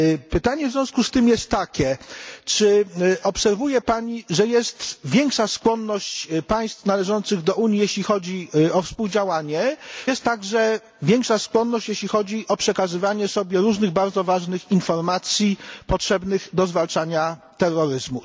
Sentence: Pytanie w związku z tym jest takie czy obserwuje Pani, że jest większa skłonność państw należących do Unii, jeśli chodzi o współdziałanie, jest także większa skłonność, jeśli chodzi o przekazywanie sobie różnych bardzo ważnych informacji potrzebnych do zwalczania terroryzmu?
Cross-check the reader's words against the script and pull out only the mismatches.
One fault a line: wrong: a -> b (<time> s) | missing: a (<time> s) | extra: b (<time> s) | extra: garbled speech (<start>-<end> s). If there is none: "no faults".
no faults